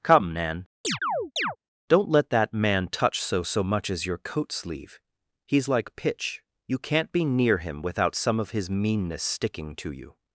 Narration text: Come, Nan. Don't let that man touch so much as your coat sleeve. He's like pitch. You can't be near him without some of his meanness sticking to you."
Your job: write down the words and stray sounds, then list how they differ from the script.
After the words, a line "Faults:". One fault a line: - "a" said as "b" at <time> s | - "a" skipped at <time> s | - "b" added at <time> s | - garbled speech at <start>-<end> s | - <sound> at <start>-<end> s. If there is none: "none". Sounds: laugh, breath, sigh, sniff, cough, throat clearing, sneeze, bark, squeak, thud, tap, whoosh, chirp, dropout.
Come, Nan. Don't let that man touch so so much as your coat sleeve. He's like pitch. You can't be near him without some of his meanness sticking to you."
Faults:
- chirp at 0.8-1.6 s
- "so" added at 3.4 s